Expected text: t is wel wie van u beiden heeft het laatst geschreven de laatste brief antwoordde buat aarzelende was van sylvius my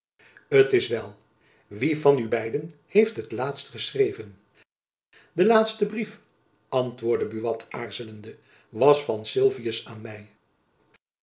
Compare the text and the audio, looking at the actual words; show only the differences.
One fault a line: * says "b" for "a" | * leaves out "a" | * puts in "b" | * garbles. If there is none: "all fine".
* puts in "aan"